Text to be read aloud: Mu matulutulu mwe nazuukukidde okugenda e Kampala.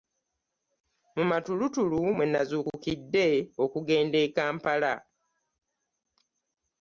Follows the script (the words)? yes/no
yes